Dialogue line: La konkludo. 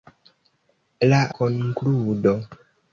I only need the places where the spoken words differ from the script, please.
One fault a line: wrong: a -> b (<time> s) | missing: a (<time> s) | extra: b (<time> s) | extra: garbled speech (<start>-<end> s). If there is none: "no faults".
no faults